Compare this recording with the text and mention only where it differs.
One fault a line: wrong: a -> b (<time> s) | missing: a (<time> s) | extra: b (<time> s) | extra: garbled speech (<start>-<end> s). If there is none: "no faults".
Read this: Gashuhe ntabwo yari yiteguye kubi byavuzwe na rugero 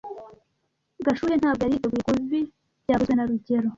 no faults